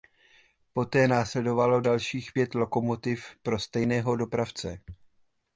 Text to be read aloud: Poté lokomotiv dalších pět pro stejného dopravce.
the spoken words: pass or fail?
fail